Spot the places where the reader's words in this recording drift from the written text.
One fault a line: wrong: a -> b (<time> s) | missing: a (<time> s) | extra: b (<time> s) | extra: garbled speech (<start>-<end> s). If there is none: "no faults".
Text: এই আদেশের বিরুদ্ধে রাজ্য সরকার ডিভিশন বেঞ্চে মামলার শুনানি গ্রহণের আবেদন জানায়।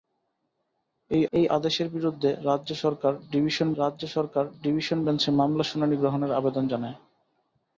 extra: এই (1.3 s)
extra: রাজ্য সরকার ডিভিশন (3.8 s)